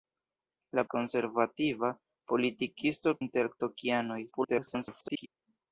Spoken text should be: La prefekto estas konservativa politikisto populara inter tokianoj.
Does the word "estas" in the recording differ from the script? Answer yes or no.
yes